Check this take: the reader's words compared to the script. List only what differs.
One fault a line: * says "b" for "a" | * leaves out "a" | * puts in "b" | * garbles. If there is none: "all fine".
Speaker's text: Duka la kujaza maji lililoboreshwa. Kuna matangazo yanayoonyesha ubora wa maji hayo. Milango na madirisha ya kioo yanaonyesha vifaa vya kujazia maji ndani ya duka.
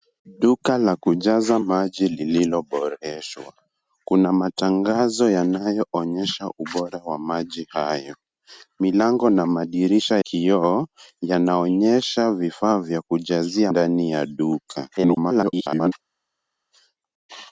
* leaves out "ya"
* leaves out "maji"
* garbles